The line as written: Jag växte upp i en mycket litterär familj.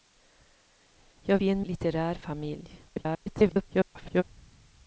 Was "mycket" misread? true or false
true